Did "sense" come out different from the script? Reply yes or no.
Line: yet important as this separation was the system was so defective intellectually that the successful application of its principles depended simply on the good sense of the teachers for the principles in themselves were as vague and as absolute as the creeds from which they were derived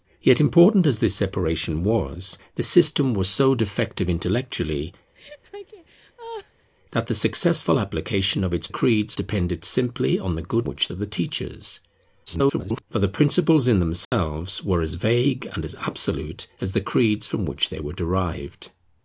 yes